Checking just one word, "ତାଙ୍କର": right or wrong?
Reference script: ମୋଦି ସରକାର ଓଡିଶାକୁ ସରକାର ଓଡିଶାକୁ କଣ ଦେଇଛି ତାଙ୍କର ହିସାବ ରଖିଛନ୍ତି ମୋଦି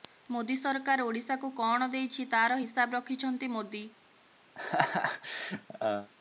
wrong